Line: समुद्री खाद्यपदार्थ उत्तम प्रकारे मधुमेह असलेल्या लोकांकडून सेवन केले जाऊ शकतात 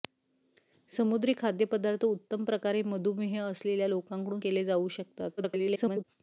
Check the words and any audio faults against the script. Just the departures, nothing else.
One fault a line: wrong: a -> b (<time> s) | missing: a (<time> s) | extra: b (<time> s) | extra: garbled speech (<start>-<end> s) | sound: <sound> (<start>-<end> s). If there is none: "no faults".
missing: सेवन (4.4 s)
extra: garbled speech (5.4-6.0 s)